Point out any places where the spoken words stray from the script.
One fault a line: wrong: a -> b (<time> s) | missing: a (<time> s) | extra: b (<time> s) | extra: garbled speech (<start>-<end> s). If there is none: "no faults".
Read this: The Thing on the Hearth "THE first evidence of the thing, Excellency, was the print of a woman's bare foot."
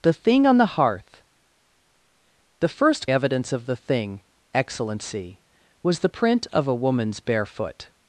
no faults